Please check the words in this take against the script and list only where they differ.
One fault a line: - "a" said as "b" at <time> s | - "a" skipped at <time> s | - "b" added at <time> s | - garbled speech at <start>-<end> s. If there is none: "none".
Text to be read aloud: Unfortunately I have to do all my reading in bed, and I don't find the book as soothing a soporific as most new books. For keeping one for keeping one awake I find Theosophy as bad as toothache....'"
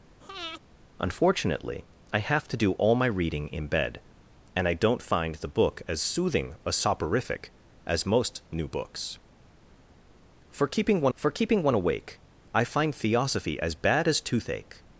none